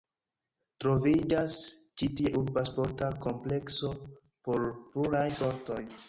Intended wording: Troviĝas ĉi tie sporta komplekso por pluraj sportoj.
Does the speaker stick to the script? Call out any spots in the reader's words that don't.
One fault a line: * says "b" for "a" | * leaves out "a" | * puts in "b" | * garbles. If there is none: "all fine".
* puts in "urba"